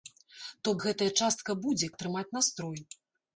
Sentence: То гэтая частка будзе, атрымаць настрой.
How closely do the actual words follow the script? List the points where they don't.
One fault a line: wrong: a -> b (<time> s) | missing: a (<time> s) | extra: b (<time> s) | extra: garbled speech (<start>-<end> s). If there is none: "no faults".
no faults